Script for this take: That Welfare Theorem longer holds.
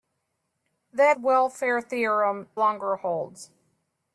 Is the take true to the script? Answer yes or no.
yes